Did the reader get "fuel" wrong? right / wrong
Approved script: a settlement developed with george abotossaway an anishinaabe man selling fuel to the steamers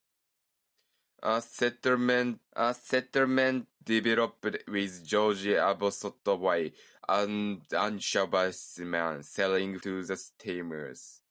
wrong